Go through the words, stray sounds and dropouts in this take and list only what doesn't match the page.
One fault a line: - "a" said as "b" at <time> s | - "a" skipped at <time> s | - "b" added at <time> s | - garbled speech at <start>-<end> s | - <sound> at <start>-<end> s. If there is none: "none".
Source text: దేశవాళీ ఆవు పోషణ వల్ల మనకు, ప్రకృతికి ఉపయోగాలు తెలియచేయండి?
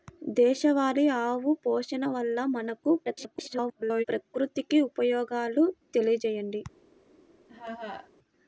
- garbled speech at 3.0-4.0 s
- laugh at 7.5-8.1 s